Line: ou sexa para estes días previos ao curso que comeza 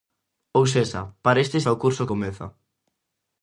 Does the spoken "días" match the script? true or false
false